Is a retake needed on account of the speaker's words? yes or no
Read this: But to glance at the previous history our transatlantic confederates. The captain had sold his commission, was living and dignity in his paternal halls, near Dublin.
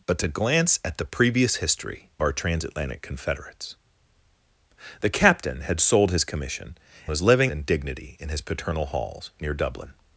no